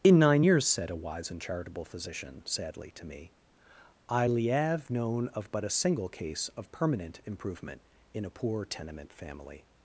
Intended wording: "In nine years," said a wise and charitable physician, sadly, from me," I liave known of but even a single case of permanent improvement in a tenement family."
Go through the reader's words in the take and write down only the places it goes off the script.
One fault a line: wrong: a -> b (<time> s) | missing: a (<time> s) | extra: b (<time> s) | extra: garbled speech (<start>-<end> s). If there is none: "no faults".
wrong: from -> to (2.9 s)
missing: even (5.6 s)
extra: poor (8.3 s)